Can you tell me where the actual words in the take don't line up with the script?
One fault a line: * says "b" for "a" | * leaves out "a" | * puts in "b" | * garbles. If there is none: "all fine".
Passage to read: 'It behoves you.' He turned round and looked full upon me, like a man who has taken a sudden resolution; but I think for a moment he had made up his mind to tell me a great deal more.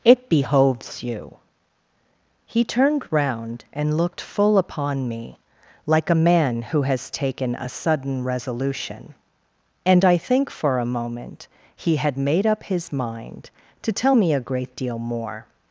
* says "and" for "but"